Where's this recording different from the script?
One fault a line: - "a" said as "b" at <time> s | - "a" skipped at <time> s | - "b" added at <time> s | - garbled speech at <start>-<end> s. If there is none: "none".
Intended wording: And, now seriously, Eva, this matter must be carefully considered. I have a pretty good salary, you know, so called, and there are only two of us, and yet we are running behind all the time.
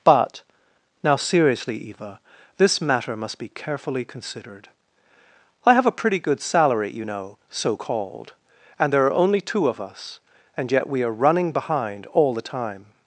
- "And" said as "But" at 0.0 s